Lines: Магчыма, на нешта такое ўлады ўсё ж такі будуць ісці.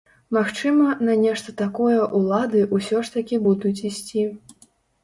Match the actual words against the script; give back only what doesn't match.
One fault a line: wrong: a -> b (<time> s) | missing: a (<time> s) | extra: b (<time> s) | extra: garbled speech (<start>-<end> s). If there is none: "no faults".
no faults